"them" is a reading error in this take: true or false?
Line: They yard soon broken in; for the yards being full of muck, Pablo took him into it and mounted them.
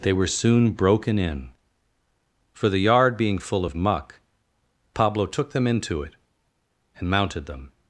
false